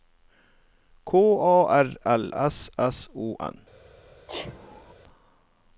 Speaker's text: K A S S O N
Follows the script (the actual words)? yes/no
no